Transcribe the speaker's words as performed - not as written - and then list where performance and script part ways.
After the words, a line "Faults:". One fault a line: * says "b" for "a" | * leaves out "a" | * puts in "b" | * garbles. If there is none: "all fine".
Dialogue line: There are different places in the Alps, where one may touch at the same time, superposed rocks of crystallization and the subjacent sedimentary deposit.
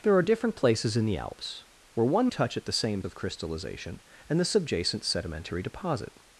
There are different places in the Alps, where one touch at the same of crystallization and the subjacent sedimentary deposit.
Faults:
* leaves out "may"
* leaves out "time superposed rocks"